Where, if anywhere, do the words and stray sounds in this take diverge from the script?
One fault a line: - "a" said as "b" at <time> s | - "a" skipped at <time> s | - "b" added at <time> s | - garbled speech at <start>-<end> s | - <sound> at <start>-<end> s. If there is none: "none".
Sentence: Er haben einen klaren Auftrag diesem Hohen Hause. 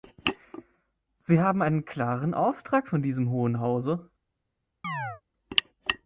- "Er" said as "Sie" at 1.2 s
- "von" added at 2.9 s
- chirp at 4.8-5.2 s